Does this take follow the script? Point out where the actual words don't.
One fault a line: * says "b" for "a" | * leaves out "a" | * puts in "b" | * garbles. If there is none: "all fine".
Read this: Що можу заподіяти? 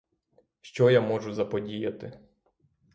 * puts in "я"